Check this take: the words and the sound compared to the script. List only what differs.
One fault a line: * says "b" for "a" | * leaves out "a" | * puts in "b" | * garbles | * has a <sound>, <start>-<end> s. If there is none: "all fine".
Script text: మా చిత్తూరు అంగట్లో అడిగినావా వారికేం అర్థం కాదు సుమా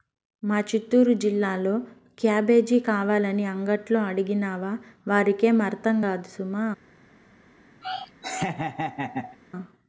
* puts in "జిల్లాలో క్యాబేజీ కావాలని"
* has a laugh, 7.8-9.4 s